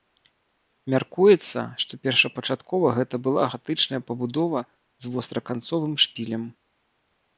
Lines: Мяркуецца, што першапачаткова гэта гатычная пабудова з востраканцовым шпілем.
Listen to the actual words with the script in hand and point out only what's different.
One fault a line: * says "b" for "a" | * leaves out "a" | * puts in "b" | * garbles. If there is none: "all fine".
* puts in "была"